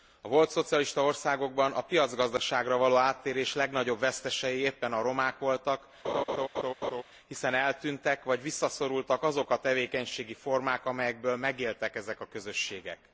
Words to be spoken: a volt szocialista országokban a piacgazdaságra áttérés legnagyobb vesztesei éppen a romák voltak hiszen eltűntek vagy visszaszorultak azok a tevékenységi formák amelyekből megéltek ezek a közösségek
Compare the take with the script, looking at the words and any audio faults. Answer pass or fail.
fail